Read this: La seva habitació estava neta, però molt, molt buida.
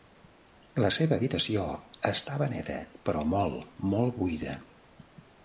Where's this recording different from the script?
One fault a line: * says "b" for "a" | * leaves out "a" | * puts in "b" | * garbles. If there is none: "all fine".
all fine